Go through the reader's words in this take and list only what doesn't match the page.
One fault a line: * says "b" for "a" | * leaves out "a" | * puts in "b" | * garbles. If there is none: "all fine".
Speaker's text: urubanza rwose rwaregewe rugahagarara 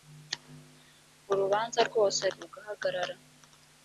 * leaves out "rwaregewe"